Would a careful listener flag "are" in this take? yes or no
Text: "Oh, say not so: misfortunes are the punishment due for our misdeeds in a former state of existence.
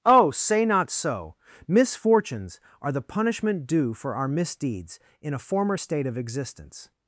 no